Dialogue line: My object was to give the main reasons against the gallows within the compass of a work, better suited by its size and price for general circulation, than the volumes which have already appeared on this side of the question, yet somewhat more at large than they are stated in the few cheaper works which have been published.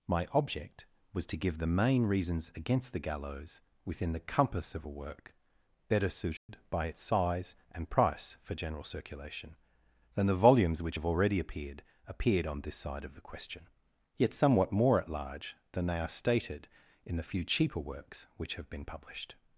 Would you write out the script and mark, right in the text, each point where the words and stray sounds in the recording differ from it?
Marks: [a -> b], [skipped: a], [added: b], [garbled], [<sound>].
My object was to give the main reasons against the gallows within the compass of a work, better suited [dropout] by its size and price for general circulation, than the volumes which have already appeared [added: appeared] on this side of the question, yet somewhat more at large than they are stated in the few cheaper works which have been published.